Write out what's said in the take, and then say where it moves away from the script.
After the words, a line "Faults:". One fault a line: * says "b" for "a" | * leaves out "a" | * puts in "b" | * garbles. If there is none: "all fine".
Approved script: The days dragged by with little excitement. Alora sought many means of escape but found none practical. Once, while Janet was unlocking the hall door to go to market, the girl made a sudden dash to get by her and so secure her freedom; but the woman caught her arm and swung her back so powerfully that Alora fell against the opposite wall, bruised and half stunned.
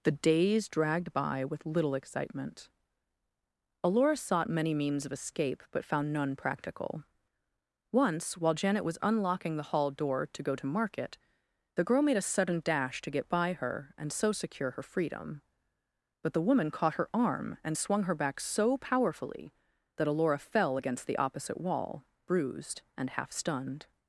The days dragged by with little excitement. Alora sought many means of escape but found none practical. Once, while Janet was unlocking the hall door to go to market, the girl made a sudden dash to get by her and so secure her freedom; but the woman caught her arm and swung her back so powerfully that Alora fell against the opposite wall, bruised and half stunned.
Faults:
all fine